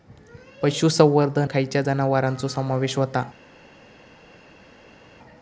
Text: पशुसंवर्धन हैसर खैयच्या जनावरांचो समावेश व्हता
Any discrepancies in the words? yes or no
yes